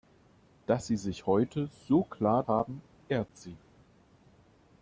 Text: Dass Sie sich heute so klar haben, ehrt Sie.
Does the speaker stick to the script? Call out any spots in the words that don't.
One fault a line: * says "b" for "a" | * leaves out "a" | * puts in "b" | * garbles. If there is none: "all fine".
all fine